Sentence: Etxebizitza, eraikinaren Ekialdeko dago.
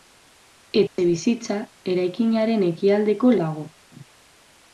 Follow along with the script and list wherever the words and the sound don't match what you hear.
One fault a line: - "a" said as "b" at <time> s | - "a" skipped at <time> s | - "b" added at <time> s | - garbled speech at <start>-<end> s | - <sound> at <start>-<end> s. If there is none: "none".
- dropout at 0.9-1.0 s